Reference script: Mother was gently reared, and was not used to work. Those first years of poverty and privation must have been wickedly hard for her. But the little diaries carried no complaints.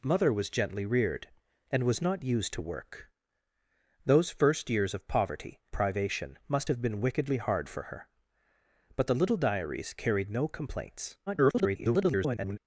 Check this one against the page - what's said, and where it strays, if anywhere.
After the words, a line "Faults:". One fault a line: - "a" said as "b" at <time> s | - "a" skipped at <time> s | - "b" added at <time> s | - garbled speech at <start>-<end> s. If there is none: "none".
Mother was gently reared, and was not used to work. Those first years of poverty privation must have been wickedly hard for her. But the little diaries carried no complaints. [garbled]
Faults:
- "and" skipped at 5.6 s
- garbled speech at 11.3-12.6 s